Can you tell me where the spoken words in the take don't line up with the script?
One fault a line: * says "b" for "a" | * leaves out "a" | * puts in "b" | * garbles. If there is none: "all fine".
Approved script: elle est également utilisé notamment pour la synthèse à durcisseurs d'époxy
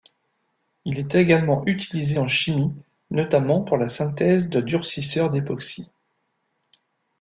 * says "il" for "elle"
* puts in "en chimie"
* says "de" for "à"